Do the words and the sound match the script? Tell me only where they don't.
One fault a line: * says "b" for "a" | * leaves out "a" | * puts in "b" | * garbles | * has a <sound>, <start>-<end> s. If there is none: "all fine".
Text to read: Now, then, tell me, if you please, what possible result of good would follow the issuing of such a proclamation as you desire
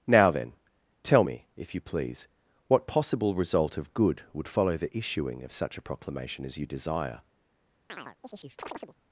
* has a chirp, 7.9-9.0 s